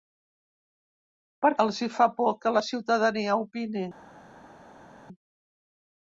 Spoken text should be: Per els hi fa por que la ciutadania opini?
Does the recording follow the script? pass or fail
pass